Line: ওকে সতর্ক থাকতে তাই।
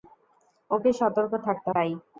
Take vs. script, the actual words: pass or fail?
pass